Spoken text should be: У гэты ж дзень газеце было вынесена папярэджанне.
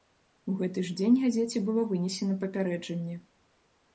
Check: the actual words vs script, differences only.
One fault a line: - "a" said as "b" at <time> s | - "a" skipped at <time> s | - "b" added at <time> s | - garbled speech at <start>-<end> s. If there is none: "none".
none